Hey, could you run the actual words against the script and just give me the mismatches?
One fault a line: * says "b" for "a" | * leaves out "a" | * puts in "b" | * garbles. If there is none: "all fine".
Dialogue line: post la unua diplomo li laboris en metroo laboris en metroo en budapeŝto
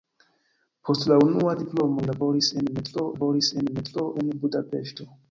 all fine